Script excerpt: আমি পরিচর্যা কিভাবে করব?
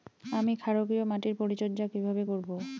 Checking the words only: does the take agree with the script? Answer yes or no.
no